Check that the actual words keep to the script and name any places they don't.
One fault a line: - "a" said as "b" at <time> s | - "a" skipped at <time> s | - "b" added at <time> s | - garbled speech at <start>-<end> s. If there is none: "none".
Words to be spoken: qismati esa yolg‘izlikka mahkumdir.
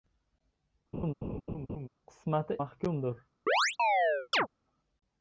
- "esa yolg‘izlikka" skipped at 2.6 s